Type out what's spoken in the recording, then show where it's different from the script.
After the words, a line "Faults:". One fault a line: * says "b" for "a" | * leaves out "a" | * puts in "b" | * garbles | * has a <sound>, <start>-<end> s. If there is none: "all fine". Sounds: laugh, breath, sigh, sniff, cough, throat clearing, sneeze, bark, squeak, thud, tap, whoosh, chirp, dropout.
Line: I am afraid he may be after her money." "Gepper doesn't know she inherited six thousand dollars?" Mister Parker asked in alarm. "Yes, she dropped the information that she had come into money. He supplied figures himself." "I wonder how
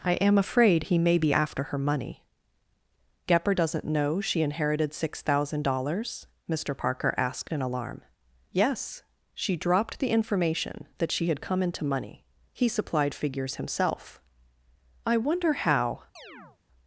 I am afraid he may be after her money." "Gepper doesn't know she inherited six thousand dollars?" Mister Parker asked in alarm. "Yes, she dropped the information that she had come into money. He supplied figures himself." "I wonder how
Faults:
* has a chirp, 16.2-16.6 s